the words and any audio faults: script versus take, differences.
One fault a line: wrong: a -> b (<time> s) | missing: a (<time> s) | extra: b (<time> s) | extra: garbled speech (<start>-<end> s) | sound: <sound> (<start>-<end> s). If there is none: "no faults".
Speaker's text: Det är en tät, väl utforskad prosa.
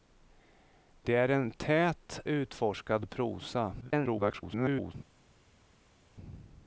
missing: väl (2.2 s)
extra: garbled speech (3.8-4.9 s)